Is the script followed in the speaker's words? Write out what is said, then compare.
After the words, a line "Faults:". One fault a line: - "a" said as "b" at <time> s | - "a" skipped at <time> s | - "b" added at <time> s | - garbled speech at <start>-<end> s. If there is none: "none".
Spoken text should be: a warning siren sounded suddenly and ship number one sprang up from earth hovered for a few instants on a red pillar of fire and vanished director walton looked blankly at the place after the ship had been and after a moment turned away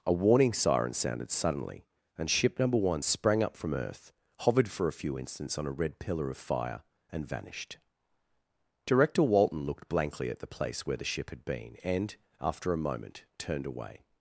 a warning siren sounded suddenly and ship number one sprang up from earth hovered for a few instants on a red pillar of fire and vanished director walton looked blankly at the place where the ship had been and after a moment turned away
Faults:
- "after" said as "where" at 10.8 s